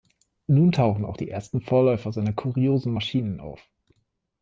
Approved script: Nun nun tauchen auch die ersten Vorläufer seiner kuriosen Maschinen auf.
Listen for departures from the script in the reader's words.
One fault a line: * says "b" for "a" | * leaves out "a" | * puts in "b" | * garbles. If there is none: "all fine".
* leaves out "nun"